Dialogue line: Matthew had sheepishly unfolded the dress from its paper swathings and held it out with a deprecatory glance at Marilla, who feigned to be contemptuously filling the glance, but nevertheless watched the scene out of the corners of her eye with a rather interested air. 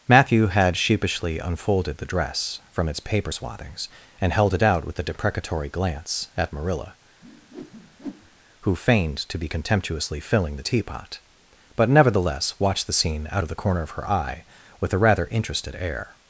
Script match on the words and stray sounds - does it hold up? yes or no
no